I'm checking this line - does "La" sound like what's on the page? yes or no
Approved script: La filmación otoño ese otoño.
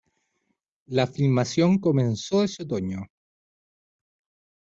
yes